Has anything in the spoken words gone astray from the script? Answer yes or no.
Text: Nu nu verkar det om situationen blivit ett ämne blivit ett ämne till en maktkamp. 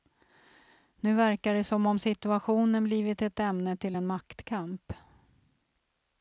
yes